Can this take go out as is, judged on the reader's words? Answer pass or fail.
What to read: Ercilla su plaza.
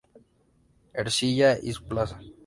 fail